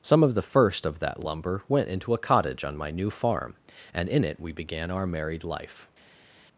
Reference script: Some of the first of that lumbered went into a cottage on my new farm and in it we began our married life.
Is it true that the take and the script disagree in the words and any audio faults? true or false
true